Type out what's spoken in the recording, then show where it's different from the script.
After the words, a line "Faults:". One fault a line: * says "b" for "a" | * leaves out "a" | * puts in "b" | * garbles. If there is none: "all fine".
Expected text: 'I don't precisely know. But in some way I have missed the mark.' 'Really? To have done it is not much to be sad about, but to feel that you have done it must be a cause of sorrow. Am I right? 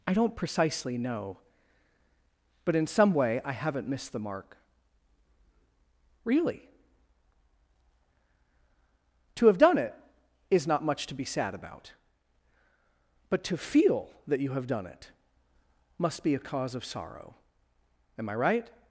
'I don't precisely know. But in some way I haven't missed the mark.' 'Really? To have done it is not much to be sad about, but to feel that you have done it must be a cause of sorrow. Am I right?
Faults:
* says "haven't" for "have"